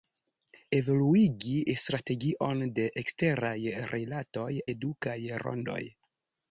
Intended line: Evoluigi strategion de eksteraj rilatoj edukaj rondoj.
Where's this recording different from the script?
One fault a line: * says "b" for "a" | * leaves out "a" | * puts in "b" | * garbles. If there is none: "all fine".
all fine